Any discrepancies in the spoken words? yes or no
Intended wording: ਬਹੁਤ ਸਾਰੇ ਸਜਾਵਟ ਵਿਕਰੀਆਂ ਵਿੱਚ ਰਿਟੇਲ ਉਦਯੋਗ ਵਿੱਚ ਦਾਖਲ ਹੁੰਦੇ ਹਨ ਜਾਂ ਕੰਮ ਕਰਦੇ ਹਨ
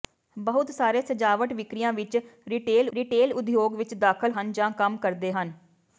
yes